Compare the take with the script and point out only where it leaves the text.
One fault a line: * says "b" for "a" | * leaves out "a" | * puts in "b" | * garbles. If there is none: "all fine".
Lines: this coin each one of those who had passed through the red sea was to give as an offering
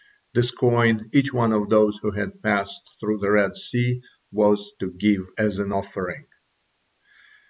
all fine